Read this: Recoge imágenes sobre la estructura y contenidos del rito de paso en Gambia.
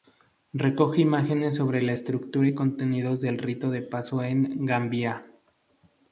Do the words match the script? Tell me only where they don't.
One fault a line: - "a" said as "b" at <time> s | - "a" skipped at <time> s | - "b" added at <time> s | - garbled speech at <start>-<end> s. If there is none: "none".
none